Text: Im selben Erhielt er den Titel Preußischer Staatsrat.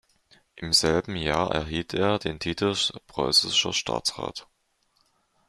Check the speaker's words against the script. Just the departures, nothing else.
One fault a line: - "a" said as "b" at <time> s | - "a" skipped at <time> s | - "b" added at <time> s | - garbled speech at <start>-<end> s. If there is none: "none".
- "Jahr" added at 1.1 s